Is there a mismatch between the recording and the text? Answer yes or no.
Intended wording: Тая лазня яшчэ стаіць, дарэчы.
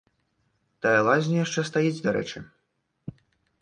no